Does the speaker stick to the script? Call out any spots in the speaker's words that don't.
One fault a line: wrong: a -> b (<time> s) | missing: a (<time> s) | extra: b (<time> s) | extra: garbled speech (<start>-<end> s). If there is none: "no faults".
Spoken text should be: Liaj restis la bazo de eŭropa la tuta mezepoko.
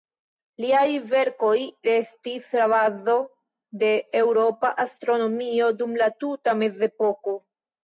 extra: verkoj (1.1 s)
extra: astronomio dum (4.9 s)